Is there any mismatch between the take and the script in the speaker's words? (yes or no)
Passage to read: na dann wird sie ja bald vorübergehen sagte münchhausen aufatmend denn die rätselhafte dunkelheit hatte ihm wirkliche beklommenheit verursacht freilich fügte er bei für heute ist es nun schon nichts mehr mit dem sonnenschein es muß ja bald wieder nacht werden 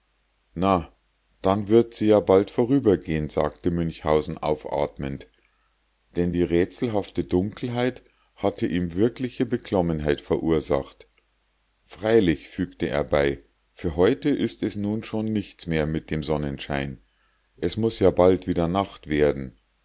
no